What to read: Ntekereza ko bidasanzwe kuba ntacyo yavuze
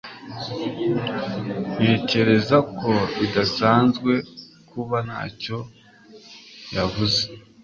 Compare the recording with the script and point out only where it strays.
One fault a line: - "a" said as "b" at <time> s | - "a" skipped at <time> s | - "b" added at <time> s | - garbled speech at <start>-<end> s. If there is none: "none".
none